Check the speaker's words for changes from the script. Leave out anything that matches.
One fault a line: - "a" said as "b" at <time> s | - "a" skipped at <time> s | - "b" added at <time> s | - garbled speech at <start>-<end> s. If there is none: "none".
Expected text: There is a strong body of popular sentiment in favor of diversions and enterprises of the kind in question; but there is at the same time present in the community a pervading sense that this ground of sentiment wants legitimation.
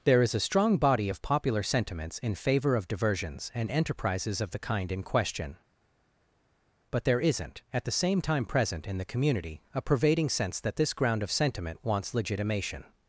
- "sentiment" said as "sentiments" at 1.6 s
- "is" said as "isn't" at 7.2 s